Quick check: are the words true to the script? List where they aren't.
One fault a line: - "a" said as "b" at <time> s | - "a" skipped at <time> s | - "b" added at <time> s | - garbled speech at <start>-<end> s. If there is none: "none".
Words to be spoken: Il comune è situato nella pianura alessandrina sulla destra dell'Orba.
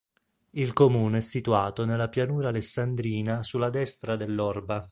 none